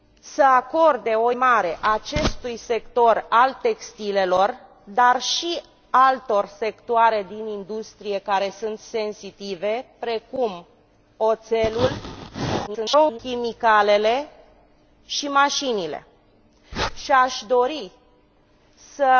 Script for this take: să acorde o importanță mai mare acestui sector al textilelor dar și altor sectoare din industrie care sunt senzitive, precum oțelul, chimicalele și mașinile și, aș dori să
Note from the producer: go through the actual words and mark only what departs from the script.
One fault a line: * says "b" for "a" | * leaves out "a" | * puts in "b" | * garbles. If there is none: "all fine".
* leaves out "importanță mai"
* garbles